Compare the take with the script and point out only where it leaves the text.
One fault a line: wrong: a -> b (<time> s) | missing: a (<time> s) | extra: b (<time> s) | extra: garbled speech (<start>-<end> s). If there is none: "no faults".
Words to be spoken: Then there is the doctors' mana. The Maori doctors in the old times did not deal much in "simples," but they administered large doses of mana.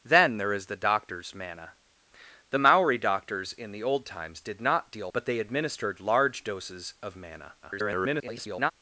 missing: much in simples (5.1 s)
extra: garbled speech (7.6-8.7 s)